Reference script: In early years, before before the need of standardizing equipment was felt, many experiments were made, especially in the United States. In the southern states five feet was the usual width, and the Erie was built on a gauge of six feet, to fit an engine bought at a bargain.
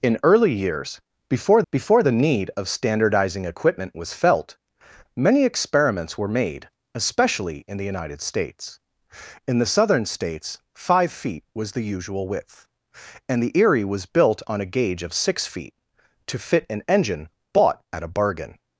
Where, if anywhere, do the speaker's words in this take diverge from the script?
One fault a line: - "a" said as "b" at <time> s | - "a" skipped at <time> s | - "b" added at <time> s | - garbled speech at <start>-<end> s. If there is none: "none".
none